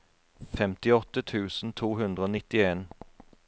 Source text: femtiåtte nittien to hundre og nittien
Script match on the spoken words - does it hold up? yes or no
no